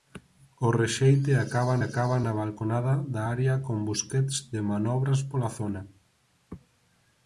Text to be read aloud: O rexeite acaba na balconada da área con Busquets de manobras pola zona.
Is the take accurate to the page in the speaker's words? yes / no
no